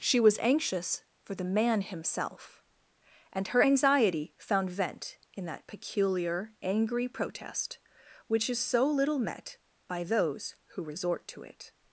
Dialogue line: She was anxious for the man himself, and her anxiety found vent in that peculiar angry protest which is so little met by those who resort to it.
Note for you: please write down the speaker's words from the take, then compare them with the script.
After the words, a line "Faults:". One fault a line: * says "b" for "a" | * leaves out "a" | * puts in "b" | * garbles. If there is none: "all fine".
She was anxious for the man himself, and her anxiety found vent in that peculiar angry protest which is so little met by those who resort to it.
Faults:
all fine